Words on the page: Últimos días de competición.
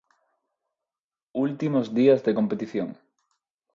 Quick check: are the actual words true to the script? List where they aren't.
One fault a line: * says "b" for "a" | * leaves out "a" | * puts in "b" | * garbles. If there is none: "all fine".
all fine